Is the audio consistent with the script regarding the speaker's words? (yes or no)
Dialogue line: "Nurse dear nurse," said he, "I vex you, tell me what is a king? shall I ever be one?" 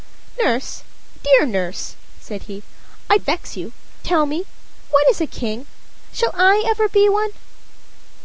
yes